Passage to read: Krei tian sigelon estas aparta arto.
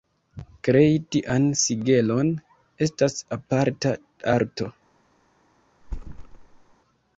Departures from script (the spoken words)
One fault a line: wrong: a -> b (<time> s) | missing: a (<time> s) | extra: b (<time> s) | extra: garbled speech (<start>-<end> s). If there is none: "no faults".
no faults